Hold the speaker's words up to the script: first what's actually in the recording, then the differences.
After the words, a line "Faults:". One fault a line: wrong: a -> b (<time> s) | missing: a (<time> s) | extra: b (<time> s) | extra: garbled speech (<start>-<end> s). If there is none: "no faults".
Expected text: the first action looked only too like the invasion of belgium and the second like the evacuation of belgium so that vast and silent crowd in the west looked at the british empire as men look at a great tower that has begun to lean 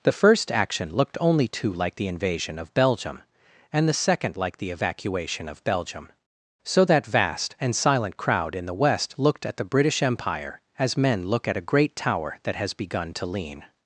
the first action looked only too like the invasion of belgium and the second like the evacuation of belgium so that vast and silent crowd in the west looked at the british empire as men look at a great tower that has begun to lean
Faults:
no faults